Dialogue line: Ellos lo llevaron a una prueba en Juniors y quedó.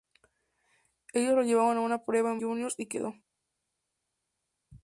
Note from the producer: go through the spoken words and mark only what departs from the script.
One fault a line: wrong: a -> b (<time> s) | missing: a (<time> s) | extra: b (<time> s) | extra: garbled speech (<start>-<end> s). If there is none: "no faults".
no faults